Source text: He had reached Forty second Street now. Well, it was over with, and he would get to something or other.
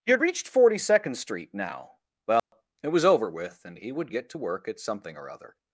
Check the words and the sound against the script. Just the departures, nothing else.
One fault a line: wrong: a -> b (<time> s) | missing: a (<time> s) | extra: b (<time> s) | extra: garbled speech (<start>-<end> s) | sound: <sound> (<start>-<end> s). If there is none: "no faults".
sound: dropout (2.4-2.5 s)
extra: work at (4.4 s)